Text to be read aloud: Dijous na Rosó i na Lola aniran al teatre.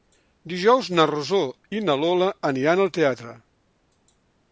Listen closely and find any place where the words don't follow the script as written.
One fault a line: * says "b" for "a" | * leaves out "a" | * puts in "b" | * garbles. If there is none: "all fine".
all fine